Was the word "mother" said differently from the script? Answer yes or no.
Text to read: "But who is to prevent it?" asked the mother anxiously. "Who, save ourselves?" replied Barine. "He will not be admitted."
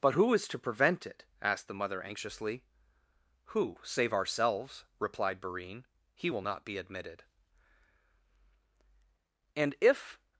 no